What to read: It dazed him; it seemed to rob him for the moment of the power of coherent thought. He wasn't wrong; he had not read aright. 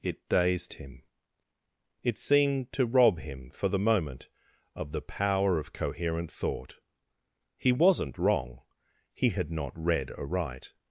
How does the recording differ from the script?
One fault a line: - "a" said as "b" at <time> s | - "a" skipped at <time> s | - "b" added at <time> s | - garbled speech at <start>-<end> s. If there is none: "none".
none